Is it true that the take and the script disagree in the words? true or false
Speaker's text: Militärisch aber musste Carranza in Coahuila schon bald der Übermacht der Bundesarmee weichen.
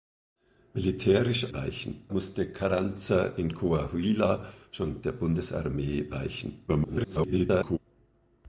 true